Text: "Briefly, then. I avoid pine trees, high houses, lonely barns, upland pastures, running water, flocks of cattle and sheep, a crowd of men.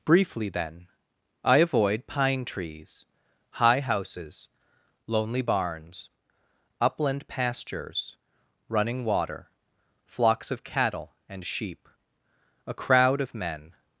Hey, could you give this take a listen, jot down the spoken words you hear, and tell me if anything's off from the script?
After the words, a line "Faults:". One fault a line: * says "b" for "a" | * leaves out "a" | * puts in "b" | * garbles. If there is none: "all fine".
"Briefly, then. I avoid pine trees, high houses, lonely barns, upland pastures, running water, flocks of cattle and sheep, a crowd of men.
Faults:
all fine